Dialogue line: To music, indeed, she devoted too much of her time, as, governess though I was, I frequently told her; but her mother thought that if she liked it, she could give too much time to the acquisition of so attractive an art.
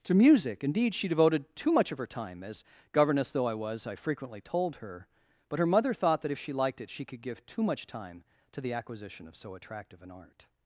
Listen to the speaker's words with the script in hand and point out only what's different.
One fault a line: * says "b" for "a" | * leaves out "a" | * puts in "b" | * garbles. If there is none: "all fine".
all fine